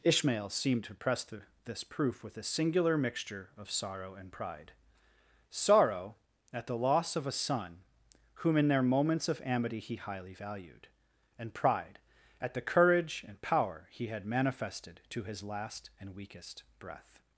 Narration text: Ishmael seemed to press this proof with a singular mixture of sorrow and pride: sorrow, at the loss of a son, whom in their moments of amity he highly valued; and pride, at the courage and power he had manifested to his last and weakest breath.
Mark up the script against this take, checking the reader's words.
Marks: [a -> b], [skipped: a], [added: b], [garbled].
Ishmael seemed to press [added: the] this proof with a singular mixture of sorrow and pride: sorrow, at the loss of a son, whom in their moments of amity he highly valued; and pride, at the courage and power he had manifested to his last and weakest breath.